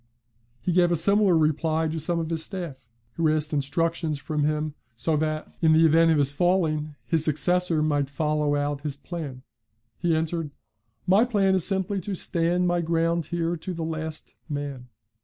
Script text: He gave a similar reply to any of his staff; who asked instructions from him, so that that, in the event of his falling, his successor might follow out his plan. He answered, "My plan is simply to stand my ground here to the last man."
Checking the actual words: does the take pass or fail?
fail